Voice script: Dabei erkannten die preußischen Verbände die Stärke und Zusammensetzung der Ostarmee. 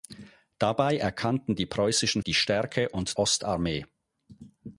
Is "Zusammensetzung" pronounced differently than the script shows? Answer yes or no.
yes